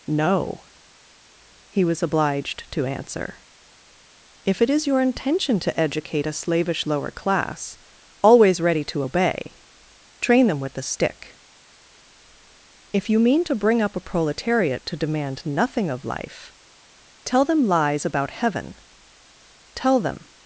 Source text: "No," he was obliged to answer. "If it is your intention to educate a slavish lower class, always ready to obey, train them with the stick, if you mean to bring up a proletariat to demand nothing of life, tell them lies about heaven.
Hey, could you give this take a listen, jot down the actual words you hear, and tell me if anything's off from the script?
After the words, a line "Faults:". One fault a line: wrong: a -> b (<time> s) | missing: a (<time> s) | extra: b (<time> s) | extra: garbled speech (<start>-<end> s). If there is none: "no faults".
"No," he was obliged to answer. "If it is your intention to educate a slavish lower class, always ready to obey, train them with the stick, if you mean to bring up a proletariat to demand nothing of life, tell them lies about heaven. Tell them
Faults:
extra: Tell them (19.7 s)